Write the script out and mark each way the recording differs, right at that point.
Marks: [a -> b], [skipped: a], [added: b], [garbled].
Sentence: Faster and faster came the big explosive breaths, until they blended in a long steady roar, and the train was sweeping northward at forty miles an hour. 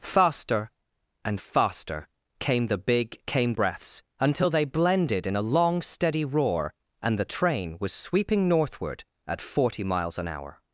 Faster and faster came the big [explosive -> came] breaths, until they blended in a long steady roar, and the train was sweeping northward at forty miles an hour.